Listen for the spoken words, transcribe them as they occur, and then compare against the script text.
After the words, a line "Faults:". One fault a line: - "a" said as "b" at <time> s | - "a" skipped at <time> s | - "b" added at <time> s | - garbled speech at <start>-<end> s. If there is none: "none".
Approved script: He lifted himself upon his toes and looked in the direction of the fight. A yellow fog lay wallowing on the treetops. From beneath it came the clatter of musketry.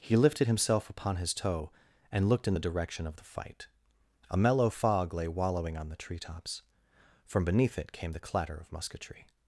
He lifted himself upon his toe and looked in the direction of the fight. A mellow fog lay wallowing on the treetops. From beneath it came the clatter of musketry.
Faults:
- "toes" said as "toe" at 1.3 s
- "yellow" said as "mellow" at 4.4 s